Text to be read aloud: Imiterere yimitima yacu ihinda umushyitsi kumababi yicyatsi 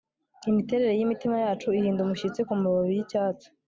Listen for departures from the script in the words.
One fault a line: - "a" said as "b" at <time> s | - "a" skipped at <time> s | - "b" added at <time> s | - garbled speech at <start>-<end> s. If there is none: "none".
none